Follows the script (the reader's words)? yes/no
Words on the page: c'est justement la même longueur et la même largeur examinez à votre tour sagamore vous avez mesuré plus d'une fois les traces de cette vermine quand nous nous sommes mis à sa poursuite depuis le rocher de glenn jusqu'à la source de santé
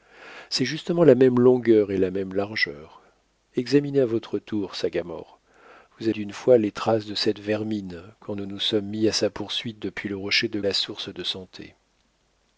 no